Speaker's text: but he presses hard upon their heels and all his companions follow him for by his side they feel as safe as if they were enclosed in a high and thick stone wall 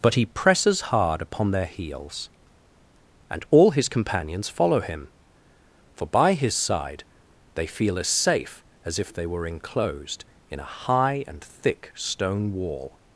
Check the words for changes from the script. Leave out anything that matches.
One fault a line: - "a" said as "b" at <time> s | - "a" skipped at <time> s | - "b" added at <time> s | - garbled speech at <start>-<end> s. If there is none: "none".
none